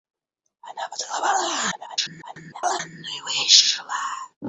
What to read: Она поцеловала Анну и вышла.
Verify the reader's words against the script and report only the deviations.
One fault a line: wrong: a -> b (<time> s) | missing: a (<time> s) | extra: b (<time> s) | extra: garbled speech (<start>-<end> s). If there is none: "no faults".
extra: garbled speech (1.7-2.8 s)